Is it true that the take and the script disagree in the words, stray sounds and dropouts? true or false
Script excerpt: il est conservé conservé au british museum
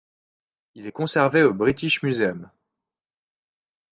true